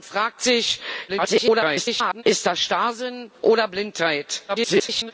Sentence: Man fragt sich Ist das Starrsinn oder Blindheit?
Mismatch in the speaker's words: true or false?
true